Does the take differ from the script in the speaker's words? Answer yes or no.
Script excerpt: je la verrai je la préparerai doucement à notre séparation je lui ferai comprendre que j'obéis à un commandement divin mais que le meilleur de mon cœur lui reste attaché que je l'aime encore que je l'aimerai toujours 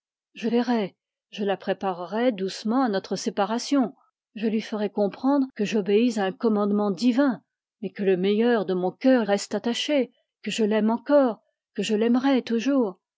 yes